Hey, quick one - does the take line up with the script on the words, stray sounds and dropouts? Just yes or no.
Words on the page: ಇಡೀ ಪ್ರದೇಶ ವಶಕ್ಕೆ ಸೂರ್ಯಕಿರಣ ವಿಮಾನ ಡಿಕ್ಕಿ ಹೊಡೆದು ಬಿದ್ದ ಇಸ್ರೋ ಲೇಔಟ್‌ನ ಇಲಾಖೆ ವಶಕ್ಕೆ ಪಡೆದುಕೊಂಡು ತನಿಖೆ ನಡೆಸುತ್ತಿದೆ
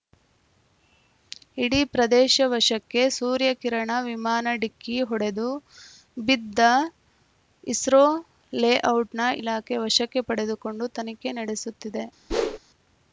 no